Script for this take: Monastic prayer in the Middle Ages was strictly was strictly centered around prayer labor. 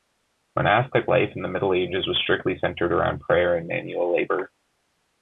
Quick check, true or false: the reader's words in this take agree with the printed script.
false